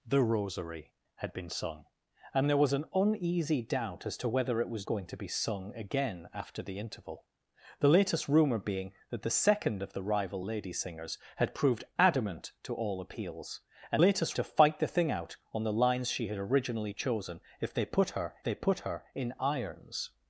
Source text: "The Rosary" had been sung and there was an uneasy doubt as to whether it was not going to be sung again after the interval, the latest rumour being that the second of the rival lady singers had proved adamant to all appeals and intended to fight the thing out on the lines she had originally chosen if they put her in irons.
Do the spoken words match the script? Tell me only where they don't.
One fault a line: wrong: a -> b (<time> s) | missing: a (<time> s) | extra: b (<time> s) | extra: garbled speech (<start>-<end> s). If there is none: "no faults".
missing: not (4.9 s)
wrong: intended -> latest (14.0 s)
extra: they put her (18.4 s)